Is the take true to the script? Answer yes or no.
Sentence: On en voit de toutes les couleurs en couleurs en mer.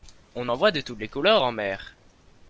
no